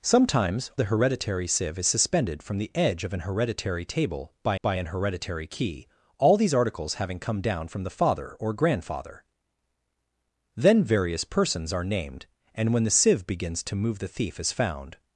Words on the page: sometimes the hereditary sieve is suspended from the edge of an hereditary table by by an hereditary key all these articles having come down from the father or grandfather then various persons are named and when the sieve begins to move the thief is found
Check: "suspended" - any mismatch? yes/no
no